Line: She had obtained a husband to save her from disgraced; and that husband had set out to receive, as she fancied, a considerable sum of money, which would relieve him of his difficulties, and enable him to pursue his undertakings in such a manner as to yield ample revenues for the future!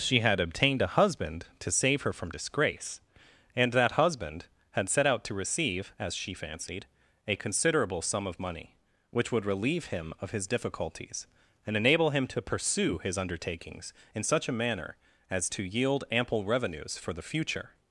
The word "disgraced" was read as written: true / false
false